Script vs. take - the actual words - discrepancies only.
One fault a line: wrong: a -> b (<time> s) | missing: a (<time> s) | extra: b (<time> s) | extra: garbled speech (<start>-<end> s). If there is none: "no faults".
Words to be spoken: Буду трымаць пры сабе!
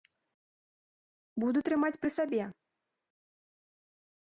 no faults